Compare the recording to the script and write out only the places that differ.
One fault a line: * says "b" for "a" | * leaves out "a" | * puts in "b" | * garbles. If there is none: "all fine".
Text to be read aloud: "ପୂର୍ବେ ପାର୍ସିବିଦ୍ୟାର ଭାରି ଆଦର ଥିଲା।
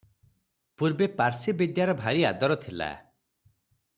all fine